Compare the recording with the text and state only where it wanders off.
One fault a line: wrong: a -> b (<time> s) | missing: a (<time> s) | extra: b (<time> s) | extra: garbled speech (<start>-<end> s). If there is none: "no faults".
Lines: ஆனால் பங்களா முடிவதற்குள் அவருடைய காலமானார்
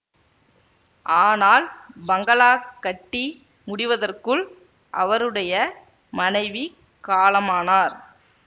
extra: கட்டி (2.8 s)
extra: மனைவி (6.1 s)